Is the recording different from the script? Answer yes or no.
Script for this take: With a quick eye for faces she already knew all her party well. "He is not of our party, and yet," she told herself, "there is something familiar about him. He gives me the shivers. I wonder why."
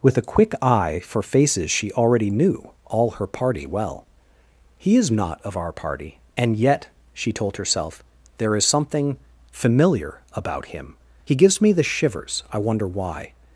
no